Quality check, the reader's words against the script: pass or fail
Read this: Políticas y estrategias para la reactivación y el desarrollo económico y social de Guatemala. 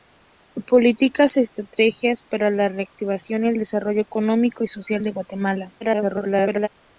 fail